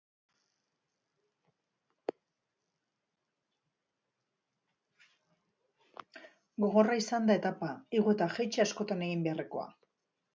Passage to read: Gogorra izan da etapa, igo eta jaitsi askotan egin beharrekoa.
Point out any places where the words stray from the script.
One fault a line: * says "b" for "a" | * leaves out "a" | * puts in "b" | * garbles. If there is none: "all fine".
all fine